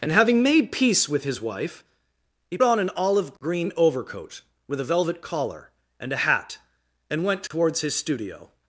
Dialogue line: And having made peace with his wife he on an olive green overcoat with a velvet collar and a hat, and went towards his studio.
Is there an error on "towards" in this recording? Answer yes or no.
no